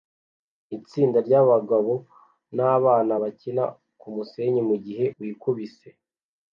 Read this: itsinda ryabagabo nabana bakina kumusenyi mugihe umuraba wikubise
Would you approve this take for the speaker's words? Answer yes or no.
no